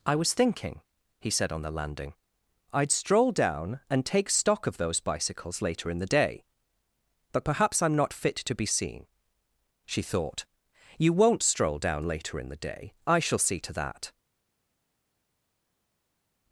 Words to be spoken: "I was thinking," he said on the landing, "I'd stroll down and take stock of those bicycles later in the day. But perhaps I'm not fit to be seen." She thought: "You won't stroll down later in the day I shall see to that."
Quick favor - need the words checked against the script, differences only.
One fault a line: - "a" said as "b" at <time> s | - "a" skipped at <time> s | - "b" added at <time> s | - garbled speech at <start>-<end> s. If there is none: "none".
none